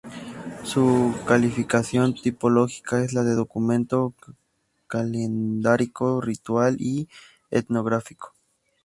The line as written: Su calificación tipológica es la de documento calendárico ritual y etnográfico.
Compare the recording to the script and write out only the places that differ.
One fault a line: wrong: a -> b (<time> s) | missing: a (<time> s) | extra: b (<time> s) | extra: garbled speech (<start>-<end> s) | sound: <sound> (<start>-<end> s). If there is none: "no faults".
no faults